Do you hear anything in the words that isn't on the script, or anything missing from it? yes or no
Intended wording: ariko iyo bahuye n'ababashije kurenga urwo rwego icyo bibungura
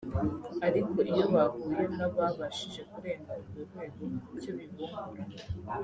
no